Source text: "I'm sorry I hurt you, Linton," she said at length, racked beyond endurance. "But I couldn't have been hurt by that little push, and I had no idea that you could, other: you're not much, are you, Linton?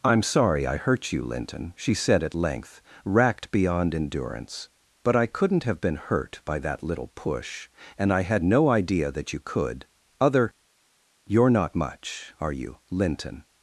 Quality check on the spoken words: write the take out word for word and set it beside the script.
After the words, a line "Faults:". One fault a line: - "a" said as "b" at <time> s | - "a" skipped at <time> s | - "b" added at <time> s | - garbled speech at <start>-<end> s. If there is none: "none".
"I'm sorry I hurt you, Linton," she said at length, racked beyond endurance. "But I couldn't have been hurt by that little push, and I had no idea that you could, other: you're not much, are you, Linton?
Faults:
none